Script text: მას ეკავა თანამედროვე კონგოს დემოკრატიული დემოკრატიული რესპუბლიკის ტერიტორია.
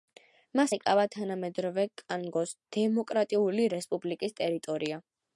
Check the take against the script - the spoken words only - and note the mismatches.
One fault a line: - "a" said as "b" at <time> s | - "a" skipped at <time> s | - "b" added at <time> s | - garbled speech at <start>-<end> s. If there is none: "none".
- "დემოკრატიული" skipped at 3.7 s